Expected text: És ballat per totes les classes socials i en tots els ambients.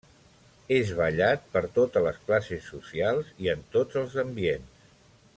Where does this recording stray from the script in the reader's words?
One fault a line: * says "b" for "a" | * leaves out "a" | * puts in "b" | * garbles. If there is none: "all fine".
all fine